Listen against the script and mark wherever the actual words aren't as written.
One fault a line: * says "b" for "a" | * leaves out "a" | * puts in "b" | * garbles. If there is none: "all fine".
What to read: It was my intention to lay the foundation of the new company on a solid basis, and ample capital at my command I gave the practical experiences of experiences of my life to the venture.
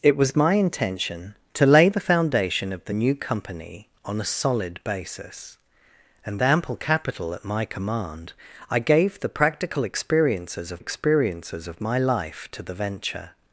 all fine